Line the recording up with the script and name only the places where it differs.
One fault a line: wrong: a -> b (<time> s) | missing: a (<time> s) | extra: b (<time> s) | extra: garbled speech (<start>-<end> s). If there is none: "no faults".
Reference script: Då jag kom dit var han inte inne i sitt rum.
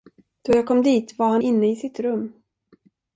missing: inte (1.4 s)